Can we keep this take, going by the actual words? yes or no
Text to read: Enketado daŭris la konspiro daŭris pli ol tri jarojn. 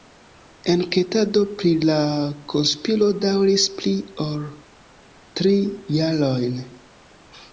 no